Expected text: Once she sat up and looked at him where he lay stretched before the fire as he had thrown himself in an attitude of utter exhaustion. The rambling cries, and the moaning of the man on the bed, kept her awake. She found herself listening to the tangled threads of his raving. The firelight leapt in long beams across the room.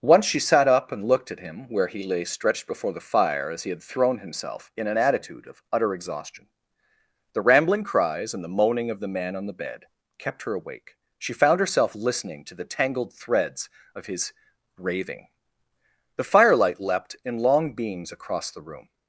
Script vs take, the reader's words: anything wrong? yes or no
no